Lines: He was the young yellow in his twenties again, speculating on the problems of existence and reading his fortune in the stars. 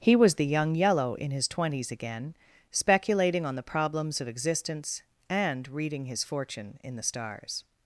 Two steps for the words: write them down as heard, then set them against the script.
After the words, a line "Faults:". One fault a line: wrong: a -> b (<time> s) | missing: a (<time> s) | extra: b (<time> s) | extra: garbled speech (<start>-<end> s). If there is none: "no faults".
He was the young yellow in his twenties again, speculating on the problems of existence and reading his fortune in the stars.
Faults:
no faults